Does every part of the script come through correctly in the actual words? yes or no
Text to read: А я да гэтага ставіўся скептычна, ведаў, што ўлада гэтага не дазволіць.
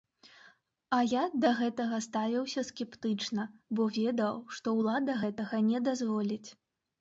no